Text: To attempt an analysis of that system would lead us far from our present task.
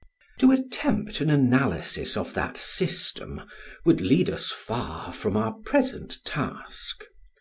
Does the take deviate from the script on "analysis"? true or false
false